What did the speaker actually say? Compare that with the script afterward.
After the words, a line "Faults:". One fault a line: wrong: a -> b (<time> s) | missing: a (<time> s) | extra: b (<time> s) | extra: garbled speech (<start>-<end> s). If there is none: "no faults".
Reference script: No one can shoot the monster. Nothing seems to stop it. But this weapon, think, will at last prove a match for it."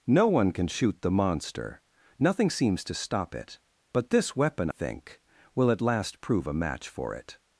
No one can shoot the monster. Nothing seems to stop it. But this weapon, think, will at last prove a match for it."
Faults:
no faults